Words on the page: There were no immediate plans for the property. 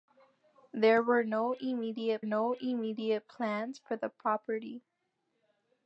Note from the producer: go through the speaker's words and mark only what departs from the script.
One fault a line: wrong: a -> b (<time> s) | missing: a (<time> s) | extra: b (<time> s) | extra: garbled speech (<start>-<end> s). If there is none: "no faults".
extra: no immediate (2.2 s)